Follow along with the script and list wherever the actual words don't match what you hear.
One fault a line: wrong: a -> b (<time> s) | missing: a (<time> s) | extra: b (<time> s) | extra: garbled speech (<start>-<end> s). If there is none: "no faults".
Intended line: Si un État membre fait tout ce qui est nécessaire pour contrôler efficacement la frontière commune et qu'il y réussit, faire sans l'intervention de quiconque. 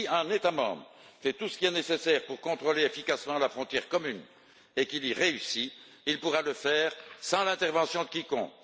extra: il pourra le (6.1 s)